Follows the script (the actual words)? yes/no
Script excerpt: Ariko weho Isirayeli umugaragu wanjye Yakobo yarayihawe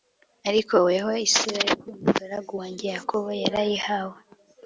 yes